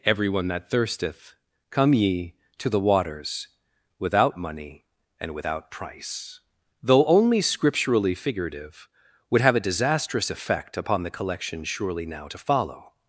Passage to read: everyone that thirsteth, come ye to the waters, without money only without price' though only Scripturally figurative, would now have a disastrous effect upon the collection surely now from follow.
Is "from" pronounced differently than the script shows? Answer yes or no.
yes